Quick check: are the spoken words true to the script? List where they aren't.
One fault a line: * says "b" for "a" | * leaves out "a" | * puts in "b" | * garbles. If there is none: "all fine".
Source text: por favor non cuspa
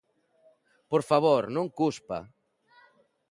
all fine